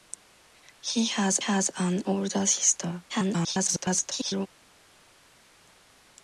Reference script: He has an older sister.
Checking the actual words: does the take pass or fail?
fail